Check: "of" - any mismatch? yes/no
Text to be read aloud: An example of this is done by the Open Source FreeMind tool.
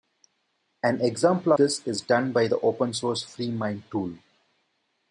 yes